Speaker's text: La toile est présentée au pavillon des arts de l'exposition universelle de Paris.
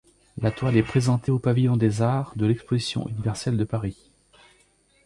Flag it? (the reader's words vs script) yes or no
no